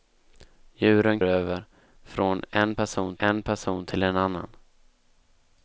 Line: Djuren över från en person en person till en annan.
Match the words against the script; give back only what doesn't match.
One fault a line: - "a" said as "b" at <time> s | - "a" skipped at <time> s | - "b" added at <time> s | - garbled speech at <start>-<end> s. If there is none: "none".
none